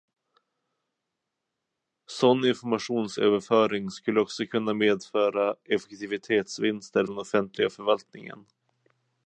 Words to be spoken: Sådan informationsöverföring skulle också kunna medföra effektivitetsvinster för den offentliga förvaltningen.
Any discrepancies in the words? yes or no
yes